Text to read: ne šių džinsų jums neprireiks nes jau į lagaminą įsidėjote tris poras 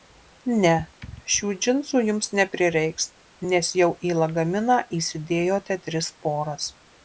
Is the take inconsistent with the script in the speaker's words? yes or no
no